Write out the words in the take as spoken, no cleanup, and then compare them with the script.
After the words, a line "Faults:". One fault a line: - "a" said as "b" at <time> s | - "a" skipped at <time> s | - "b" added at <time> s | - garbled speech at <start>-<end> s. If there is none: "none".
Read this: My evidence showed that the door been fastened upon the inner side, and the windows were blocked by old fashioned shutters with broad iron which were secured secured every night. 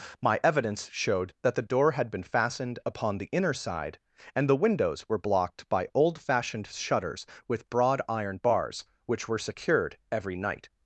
My evidence showed that the door had been fastened upon the inner side, and the windows were blocked by old fashioned shutters with broad iron bars, which were secured every night.
Faults:
- "had" added at 1.9 s
- "bars" added at 8.4 s
- "secured" skipped at 10.0 s